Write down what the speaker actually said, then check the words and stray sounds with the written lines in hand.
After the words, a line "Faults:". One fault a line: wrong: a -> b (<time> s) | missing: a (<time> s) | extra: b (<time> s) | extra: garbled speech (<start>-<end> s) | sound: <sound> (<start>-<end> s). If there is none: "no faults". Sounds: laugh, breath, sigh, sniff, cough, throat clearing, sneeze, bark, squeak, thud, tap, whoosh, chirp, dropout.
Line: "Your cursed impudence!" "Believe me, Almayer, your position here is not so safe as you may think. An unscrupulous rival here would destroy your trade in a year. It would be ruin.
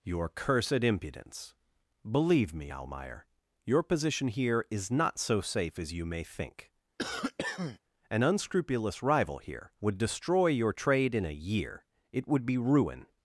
"Your cursed impudence!" "Believe me, Almayer, your position here is not so safe as you may think. An unscrupulous rival here would destroy your trade in a year. It would be ruin.
Faults:
sound: cough (7.0-7.8 s)